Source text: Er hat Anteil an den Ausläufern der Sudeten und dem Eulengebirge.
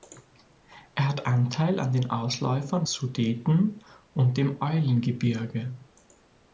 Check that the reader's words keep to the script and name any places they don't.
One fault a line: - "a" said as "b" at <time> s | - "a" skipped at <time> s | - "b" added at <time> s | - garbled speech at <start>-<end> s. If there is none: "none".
- "der" skipped at 2.9 s